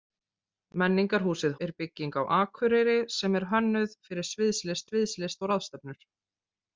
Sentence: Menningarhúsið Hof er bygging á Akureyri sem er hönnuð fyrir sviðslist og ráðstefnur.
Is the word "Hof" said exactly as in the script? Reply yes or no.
no